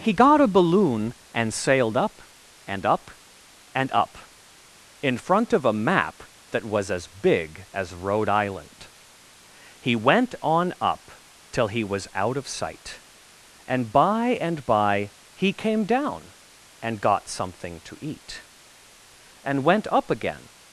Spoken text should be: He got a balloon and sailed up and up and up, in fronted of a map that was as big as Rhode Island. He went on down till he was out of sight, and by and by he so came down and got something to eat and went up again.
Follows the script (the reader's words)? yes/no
no